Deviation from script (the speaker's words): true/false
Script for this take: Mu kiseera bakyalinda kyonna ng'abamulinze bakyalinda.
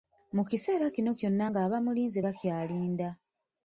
true